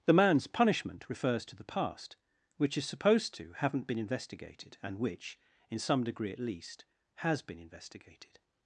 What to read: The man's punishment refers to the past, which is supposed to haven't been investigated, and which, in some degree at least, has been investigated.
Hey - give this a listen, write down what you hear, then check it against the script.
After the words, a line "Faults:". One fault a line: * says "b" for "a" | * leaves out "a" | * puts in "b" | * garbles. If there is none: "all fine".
The man's punishment refers to the past, which is supposed to haven't been investigated, and which, in some degree at least, has been investigated.
Faults:
all fine